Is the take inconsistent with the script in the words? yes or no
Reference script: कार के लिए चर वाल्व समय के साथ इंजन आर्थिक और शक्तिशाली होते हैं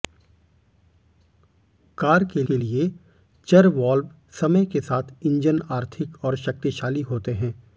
yes